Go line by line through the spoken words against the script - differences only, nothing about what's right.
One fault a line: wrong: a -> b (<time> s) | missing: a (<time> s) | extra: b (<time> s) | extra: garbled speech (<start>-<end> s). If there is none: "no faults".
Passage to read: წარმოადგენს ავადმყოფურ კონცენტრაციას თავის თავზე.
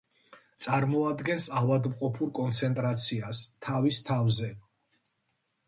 no faults